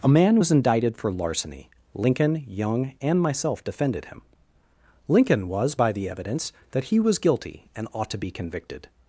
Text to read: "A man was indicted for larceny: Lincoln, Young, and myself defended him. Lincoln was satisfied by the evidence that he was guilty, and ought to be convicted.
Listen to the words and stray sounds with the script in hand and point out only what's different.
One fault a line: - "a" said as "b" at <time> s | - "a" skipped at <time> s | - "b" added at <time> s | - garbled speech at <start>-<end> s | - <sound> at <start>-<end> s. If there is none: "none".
- "satisfied" skipped at 5.7 s